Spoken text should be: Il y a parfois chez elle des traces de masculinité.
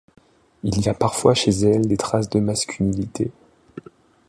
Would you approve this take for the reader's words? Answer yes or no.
yes